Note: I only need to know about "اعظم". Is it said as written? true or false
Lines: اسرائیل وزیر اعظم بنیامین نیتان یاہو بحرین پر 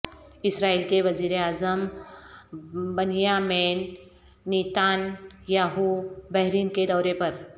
true